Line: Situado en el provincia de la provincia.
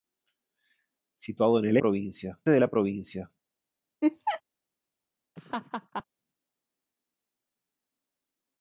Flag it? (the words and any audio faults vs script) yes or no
yes